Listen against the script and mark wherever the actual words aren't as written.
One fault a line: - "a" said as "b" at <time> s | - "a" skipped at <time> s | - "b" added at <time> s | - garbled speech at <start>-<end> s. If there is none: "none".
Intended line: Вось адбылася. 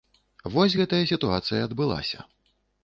- "гэтая сітуацыя" added at 0.8 s